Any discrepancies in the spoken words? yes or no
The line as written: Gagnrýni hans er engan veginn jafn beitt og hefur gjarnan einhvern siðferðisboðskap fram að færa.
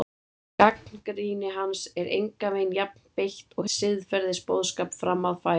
yes